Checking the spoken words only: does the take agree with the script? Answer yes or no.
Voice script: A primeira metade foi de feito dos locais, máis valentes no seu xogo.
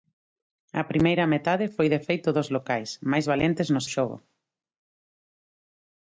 no